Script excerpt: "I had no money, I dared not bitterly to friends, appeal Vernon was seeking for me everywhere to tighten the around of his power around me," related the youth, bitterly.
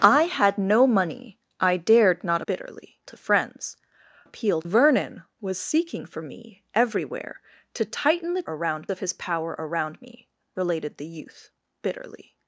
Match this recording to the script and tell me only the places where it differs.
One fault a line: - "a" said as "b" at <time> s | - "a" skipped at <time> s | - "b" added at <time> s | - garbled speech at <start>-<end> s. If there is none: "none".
none